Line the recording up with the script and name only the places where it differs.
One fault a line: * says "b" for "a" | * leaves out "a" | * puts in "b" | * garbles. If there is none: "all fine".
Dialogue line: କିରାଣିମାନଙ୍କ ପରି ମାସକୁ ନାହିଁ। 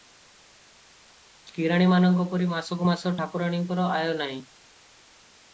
* puts in "ମାସ ଠାକୁରାଣୀଙ୍କର ଆୟ"